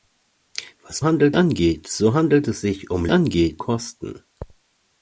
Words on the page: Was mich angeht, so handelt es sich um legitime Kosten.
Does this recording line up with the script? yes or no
no